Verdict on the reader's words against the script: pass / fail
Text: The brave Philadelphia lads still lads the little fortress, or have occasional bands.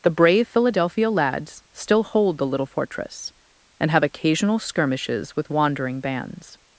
fail